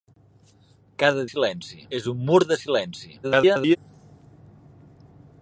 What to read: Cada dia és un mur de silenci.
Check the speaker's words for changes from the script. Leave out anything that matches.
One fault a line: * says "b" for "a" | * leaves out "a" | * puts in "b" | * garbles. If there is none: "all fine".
* says "silenci" for "dia"
* garbles